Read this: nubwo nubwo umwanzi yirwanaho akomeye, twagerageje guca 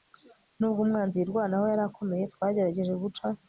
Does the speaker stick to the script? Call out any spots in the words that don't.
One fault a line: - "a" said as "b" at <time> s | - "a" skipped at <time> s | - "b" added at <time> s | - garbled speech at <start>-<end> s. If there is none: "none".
- "nubwo" skipped at 0.8 s
- "yari" added at 1.7 s